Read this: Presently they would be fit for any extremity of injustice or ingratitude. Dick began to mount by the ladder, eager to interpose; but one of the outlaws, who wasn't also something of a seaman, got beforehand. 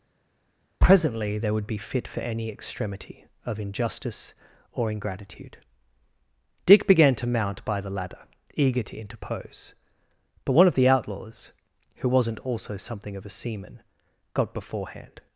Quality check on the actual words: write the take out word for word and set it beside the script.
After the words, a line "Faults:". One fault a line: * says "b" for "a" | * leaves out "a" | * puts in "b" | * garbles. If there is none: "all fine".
Presently they would be fit for any extremity of injustice or ingratitude. Dick began to mount by the ladder, eager to interpose; but one of the outlaws, who wasn't also something of a seaman, got beforehand.
Faults:
all fine